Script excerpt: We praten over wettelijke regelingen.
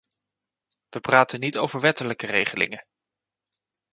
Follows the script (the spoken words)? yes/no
no